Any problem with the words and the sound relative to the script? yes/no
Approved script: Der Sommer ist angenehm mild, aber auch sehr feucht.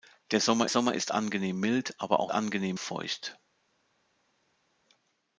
yes